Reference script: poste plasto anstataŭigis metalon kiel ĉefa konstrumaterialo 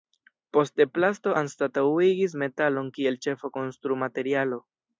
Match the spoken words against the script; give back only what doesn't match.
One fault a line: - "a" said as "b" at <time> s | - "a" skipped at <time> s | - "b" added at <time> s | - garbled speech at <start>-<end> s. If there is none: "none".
none